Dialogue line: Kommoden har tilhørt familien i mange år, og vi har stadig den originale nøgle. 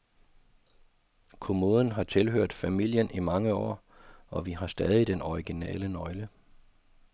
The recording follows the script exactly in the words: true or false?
true